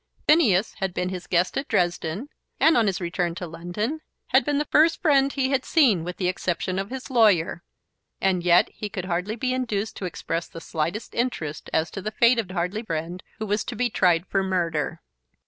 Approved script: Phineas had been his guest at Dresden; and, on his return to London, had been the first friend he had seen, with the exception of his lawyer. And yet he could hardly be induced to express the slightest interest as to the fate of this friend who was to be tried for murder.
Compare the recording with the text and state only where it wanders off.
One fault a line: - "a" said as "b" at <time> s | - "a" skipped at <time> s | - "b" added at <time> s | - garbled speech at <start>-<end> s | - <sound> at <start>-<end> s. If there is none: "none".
- "this" said as "hardly" at 12.5 s